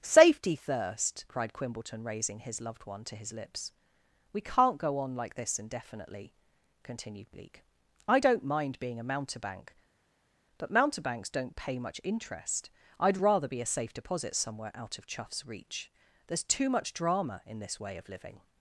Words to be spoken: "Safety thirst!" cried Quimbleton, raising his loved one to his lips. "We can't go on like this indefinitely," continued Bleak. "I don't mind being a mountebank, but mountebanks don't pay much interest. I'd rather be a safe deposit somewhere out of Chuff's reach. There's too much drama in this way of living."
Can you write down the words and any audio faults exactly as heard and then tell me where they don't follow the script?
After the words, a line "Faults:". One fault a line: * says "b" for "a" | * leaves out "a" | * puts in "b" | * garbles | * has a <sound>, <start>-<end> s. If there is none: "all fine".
"Safety thirst!" cried Quimbleton, raising his loved one to his lips. "We can't go on like this indefinitely," continued Bleak. "I don't mind being a mountebank, but mountebanks don't pay much interest. I'd rather be a safe deposit somewhere out of Chuff's reach. There's too much drama in this way of living."
Faults:
all fine